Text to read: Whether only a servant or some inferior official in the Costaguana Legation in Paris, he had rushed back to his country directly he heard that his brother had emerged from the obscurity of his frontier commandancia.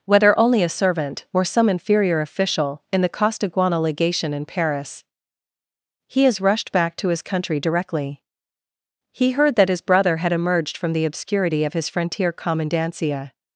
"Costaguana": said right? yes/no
yes